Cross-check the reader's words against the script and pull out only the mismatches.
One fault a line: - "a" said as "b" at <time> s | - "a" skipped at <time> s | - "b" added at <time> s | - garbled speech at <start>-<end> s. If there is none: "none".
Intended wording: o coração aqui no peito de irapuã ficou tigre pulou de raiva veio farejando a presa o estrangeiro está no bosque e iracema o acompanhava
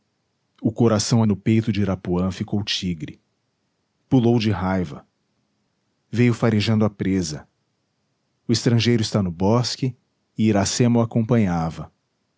- "aqui" skipped at 1.2 s